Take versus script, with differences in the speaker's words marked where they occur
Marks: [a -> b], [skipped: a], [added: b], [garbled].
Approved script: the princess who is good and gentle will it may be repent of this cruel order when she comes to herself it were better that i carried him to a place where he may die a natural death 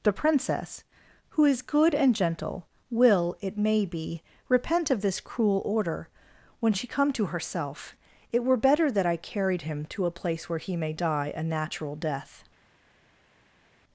the princess who is good and gentle will it may be repent of this cruel order when she [comes -> come] to herself it were better that i carried him to a place where he may die a natural death